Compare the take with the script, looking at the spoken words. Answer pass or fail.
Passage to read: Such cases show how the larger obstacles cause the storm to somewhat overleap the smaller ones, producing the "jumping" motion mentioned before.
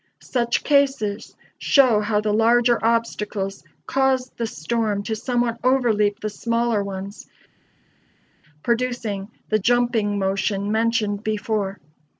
pass